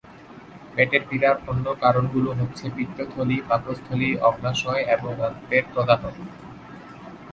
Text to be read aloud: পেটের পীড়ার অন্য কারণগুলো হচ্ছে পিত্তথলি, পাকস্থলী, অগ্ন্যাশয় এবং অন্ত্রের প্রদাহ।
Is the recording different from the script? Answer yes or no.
no